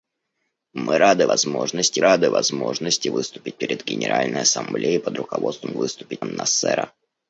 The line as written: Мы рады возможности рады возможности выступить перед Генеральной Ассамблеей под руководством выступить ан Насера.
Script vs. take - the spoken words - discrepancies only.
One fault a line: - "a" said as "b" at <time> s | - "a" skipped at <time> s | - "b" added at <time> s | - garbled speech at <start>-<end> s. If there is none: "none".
none